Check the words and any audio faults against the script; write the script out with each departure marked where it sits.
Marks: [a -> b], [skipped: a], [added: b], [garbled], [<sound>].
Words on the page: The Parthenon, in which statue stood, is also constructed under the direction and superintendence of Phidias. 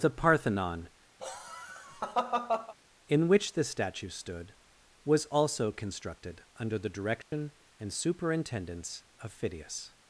The Parthenon, [laugh] in which [added: this] statue stood, [is -> was] also constructed under the direction [dropout] and superintendence of Phidias.